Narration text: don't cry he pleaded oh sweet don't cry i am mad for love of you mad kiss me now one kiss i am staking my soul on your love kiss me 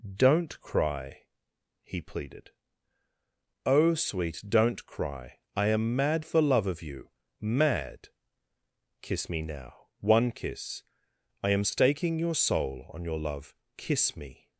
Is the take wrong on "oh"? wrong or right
right